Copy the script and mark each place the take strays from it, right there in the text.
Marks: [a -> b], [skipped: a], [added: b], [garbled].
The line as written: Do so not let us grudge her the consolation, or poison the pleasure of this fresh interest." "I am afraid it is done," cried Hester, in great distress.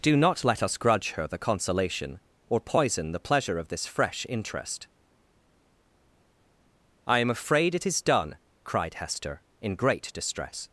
Do [skipped: so] not let us grudge her the consolation, or poison the pleasure of this fresh interest." "I am afraid it is done," cried Hester, in great distress.